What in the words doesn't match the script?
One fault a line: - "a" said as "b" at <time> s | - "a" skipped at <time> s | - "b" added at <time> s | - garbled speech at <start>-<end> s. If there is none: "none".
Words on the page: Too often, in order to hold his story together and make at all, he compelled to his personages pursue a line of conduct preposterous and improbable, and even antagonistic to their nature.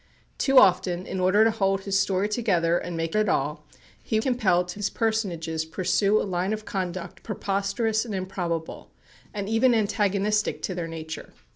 none